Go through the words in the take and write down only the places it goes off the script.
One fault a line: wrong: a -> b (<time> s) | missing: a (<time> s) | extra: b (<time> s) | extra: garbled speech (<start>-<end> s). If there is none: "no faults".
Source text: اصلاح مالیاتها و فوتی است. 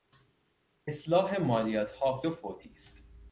no faults